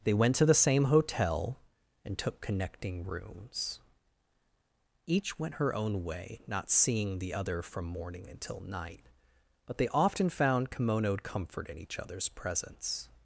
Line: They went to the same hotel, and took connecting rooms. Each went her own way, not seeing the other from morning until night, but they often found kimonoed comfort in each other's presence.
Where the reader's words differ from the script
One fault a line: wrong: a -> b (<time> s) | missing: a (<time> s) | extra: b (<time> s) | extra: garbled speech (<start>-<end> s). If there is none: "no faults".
no faults